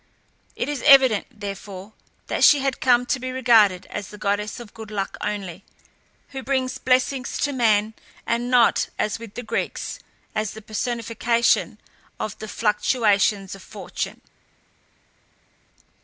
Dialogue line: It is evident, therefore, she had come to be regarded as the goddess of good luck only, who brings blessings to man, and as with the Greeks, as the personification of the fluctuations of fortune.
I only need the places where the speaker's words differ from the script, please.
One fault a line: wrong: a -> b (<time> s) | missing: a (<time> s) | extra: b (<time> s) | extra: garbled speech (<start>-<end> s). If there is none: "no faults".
extra: that (2.2 s)
extra: not (8.5 s)